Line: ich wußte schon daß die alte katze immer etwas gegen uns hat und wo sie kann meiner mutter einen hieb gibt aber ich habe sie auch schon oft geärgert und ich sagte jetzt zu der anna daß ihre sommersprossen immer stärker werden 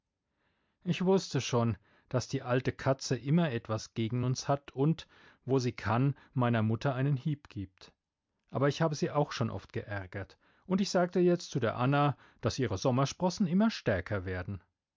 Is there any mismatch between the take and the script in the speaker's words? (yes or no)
no